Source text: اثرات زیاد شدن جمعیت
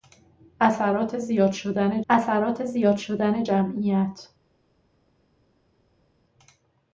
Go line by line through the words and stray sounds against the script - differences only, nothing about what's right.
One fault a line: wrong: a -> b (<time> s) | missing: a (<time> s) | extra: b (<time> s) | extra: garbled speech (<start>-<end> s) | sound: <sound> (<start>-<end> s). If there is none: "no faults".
extra: اثرات زیاد شدن (2.1 s)